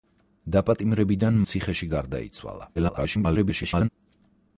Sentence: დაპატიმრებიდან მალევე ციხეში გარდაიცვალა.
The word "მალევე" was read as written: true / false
false